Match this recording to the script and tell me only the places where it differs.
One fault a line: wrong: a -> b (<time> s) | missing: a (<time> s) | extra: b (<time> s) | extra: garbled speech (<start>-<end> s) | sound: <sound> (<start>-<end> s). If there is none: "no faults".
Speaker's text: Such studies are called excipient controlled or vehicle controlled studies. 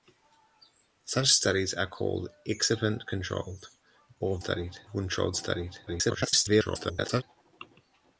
wrong: vehicle -> studies (4.4 s)
extra: garbled speech (5.9-7.2 s)